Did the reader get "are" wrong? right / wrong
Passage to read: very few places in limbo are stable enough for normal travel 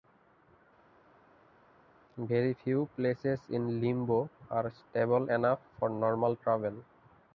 right